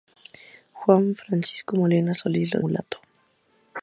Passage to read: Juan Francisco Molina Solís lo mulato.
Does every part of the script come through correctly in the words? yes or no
yes